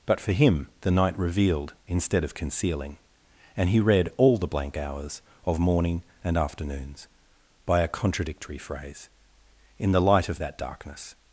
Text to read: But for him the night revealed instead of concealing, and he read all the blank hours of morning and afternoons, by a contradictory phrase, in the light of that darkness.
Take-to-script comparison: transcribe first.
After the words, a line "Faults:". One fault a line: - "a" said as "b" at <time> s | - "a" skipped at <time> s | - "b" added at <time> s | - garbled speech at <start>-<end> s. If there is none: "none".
But for him the night revealed instead of concealing, and he read all the blank hours of morning and afternoons, by a contradictory phrase, in the light of that darkness.
Faults:
none